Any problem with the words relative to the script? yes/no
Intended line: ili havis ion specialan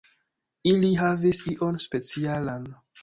no